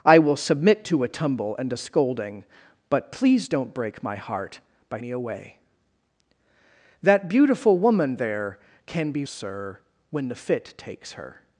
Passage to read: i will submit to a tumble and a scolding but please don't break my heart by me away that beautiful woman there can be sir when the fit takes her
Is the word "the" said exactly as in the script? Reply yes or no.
yes